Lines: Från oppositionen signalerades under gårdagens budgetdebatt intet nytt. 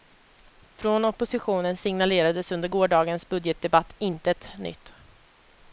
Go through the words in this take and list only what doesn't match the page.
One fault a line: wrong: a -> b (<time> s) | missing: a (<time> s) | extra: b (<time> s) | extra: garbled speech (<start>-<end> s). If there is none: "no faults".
no faults